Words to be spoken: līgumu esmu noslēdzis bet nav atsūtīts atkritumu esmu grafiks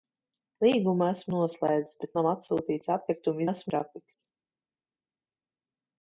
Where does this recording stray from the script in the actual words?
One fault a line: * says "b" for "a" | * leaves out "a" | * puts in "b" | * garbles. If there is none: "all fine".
all fine